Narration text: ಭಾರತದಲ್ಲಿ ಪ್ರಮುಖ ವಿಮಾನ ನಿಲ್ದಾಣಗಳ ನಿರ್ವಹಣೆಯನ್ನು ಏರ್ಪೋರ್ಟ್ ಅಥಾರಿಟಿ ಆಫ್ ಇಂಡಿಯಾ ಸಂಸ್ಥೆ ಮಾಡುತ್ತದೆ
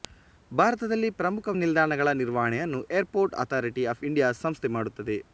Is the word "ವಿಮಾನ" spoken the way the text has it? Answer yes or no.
no